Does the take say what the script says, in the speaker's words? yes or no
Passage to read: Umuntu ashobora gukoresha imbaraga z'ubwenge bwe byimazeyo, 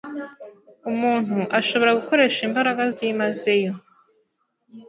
no